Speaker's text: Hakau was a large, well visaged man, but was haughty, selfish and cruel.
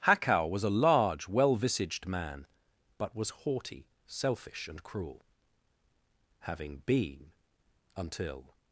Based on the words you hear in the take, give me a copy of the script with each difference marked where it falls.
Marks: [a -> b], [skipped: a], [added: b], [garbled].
Hakau was a large, well visaged man, but was haughty, selfish and cruel. [added: Having been until]